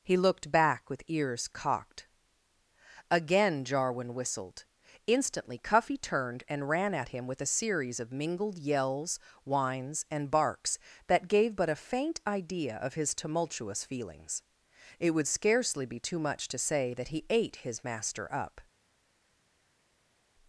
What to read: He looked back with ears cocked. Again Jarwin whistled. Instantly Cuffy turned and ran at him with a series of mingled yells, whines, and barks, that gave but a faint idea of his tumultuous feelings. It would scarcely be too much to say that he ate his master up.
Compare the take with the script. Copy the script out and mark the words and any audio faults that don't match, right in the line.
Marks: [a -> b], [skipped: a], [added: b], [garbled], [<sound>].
He looked back with ears cocked. Again Jarwin whistled. Instantly Cuffy turned and ran at him with a series of mingled yells, whines, and barks, that gave but a faint idea of his tumultuous feelings. It would scarcely be too much to say that he ate his master up.